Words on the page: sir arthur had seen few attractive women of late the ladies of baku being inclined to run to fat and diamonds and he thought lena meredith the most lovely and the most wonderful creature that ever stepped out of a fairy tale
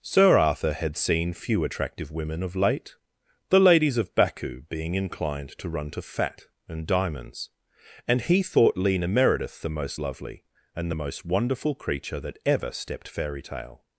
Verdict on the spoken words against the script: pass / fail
fail